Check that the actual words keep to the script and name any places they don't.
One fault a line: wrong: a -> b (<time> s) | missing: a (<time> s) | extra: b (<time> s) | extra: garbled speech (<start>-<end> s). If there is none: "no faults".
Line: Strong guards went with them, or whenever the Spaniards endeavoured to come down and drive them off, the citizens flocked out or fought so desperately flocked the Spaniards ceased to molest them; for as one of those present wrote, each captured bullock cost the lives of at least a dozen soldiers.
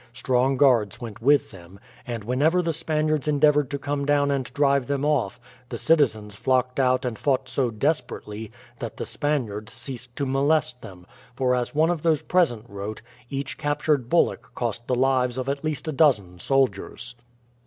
wrong: or -> and (2.1 s)
wrong: or -> and (7.0 s)
wrong: flocked -> that (8.8 s)